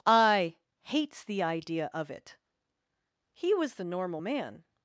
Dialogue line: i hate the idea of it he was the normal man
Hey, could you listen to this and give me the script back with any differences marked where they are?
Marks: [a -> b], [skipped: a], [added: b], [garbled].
i [hate -> hates] the idea of it he was the normal man